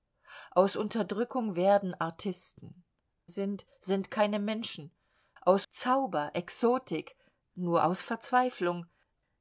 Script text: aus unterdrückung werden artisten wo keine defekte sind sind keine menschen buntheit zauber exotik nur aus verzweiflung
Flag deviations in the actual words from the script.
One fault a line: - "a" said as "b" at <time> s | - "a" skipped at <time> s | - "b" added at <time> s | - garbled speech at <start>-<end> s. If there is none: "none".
- "wo keine defekte" skipped at 2.8 s
- "buntheit" said as "aus" at 5.4 s